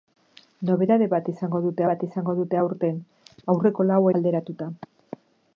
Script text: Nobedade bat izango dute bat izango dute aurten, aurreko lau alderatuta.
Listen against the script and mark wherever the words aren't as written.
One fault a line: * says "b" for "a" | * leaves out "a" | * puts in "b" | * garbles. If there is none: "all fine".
all fine